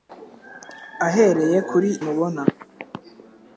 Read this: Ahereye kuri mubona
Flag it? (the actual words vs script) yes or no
no